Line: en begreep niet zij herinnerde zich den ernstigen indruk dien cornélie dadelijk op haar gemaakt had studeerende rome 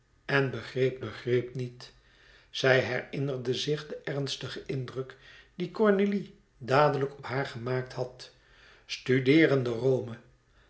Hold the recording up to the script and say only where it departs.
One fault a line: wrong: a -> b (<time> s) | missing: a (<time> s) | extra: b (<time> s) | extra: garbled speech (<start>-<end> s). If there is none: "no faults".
extra: begreep (1.0 s)